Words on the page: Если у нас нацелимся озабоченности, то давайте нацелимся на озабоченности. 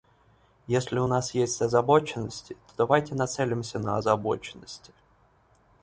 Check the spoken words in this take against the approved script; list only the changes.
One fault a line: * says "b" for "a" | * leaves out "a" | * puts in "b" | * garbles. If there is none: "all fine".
* says "есть" for "нацелимся"